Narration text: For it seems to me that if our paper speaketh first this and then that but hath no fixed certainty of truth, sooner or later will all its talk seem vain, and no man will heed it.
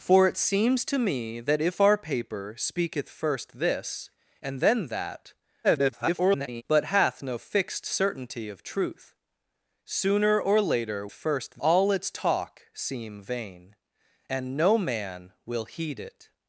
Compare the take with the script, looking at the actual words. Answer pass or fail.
fail